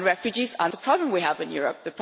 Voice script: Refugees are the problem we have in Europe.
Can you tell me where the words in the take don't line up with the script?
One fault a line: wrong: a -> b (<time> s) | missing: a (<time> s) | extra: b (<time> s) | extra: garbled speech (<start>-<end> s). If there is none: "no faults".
no faults